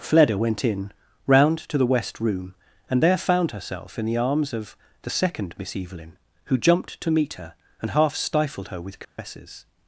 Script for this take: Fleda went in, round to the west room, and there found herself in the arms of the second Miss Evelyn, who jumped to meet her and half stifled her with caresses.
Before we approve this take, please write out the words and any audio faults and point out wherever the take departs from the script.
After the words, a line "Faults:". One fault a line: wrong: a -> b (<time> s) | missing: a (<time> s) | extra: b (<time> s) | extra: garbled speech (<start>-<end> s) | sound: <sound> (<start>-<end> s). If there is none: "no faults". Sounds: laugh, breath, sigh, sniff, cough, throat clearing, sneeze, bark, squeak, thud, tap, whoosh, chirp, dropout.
Fleda went in, round to the west room, and there found herself in the arms of the second Miss Evelyn, who jumped to meet her and half stifled her with caresses.
Faults:
sound: dropout (9.0-9.2 s)